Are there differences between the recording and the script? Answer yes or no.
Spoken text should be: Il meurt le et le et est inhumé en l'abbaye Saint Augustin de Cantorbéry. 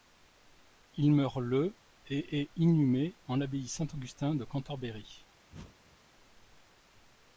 yes